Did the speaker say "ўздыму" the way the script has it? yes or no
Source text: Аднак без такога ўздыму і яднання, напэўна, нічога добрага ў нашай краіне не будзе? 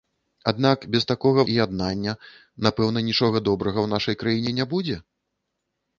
no